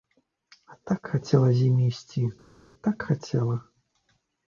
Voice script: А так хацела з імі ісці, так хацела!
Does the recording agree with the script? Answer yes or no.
yes